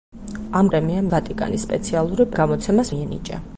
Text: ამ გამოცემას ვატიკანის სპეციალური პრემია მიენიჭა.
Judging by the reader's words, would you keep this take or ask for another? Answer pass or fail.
fail